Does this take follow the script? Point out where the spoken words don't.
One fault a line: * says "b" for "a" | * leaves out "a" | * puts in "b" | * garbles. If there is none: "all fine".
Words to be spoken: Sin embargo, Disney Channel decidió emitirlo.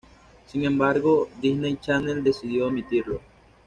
all fine